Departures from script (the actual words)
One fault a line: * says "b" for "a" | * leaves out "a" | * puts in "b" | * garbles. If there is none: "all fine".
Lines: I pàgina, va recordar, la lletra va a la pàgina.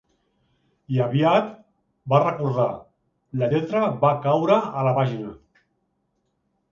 * says "aviat" for "pàgina"
* puts in "caure"